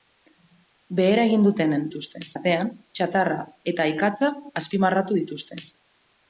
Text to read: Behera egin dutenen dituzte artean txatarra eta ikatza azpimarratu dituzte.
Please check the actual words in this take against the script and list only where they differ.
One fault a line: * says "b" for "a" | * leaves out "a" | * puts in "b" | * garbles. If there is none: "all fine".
all fine